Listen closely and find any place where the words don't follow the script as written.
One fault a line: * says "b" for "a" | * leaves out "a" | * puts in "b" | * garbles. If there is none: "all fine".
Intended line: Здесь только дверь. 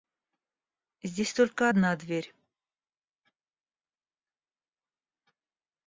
* puts in "одна"